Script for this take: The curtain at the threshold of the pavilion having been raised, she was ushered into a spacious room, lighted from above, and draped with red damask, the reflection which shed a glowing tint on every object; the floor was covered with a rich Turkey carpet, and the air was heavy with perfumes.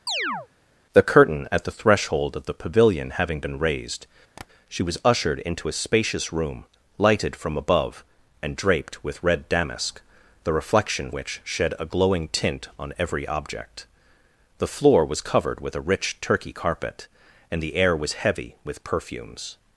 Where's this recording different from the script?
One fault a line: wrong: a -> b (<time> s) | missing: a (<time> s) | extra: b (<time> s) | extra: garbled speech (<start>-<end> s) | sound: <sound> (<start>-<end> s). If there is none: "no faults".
sound: chirp (0.1-0.5 s)
sound: tap (4.4-4.5 s)